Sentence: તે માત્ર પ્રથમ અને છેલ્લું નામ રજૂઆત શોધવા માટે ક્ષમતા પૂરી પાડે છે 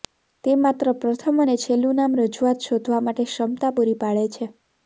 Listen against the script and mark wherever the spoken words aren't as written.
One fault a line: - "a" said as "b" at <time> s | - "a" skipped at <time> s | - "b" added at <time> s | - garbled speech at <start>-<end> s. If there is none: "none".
none